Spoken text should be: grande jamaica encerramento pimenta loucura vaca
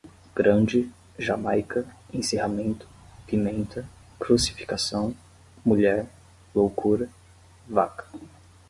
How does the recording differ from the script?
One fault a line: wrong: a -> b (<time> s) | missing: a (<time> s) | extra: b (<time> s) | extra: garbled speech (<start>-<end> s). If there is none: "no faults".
extra: crucificação mulher (4.2 s)